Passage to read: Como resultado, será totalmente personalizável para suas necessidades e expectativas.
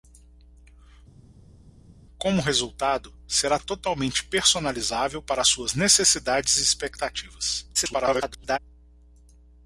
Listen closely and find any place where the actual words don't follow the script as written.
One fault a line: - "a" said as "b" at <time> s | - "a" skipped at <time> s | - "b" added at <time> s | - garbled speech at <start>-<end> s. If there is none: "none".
- garbled speech at 7.7-8.6 s